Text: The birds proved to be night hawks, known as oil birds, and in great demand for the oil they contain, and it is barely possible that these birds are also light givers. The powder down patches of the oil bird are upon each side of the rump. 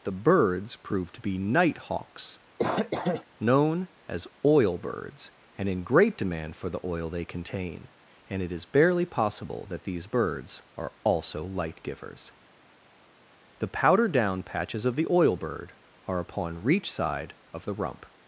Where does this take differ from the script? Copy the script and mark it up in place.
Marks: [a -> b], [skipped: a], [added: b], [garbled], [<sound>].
The birds proved to be night hawks, [cough] known as oil birds, and in great demand for the oil they contain, and it is barely possible that these birds are also light givers. The powder down patches of the oil bird are upon [each -> reach] side of the rump.